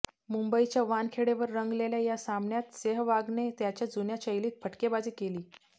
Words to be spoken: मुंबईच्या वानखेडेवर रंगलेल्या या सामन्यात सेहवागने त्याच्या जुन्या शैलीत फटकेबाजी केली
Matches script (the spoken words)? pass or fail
pass